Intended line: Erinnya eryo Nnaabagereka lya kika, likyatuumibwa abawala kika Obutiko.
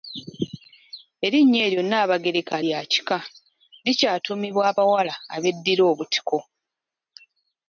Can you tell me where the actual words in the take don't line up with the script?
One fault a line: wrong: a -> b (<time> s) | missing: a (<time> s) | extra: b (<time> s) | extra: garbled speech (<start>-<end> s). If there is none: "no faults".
wrong: kika -> abeddira (5.3 s)